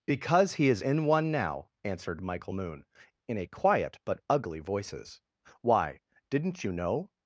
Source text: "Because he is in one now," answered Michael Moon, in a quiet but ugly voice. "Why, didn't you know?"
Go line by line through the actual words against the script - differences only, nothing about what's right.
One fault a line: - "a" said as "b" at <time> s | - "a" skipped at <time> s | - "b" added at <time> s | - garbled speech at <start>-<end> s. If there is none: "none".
- "voice" said as "voices" at 4.6 s